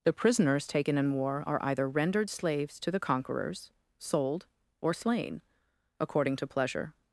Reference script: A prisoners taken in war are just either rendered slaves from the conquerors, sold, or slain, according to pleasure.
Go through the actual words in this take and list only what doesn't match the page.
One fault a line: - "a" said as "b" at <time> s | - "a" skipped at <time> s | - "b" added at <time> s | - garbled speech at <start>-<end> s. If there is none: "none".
- "A" said as "The" at 0.0 s
- "just" skipped at 1.6 s
- "from" said as "to" at 2.8 s